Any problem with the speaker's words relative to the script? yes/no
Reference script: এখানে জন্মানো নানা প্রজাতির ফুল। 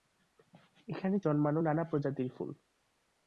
no